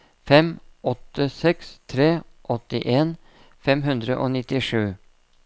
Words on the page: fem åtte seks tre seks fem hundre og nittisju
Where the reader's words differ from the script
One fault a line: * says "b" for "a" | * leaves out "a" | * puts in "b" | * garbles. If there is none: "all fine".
* says "åttien" for "seks"